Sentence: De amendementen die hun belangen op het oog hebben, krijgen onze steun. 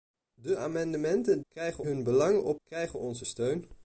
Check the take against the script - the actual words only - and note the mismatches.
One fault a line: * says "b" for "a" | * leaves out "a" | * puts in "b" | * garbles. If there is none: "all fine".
* says "krijgen" for "die"
* leaves out "het oog hebben"